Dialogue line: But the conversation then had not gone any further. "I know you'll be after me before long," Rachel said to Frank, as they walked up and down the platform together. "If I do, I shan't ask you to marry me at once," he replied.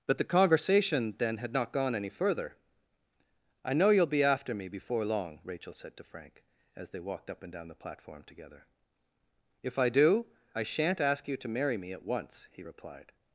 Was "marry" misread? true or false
false